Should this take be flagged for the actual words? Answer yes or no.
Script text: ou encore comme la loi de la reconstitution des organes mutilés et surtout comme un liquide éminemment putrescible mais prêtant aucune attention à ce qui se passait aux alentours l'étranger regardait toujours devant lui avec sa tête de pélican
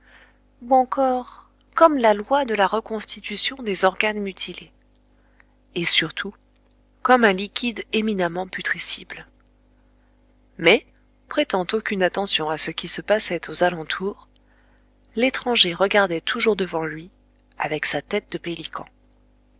no